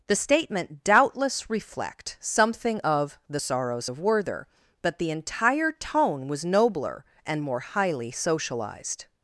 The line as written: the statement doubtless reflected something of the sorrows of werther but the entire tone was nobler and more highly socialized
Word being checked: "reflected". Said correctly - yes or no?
no